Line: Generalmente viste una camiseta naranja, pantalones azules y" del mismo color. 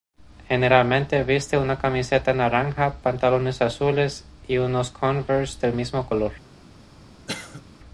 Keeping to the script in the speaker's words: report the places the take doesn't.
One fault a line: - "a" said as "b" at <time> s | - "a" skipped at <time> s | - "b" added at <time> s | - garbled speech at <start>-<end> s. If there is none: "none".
- "unos Converse" added at 4.6 s